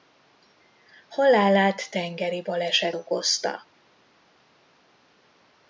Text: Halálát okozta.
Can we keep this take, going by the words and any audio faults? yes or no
no